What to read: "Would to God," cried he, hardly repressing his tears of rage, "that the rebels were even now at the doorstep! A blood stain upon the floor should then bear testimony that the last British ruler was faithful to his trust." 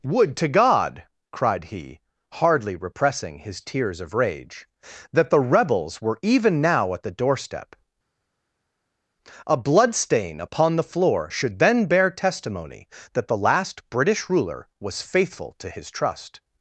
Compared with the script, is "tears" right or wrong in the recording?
right